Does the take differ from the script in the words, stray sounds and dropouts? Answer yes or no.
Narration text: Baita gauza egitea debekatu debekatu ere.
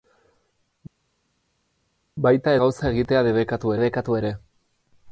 no